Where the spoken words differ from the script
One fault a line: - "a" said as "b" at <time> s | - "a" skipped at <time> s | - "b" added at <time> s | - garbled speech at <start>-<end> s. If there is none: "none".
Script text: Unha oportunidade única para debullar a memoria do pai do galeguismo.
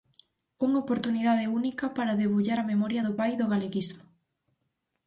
none